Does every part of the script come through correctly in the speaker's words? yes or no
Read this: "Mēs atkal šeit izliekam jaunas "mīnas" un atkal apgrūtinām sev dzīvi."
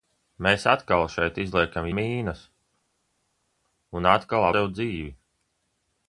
no